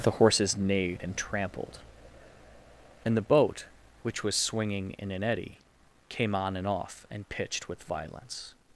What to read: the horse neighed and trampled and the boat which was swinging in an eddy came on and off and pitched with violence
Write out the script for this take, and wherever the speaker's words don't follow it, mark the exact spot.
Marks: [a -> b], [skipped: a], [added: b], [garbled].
the [horse -> horses] neighed and trampled and the boat which was swinging in an eddy came on and off and pitched with violence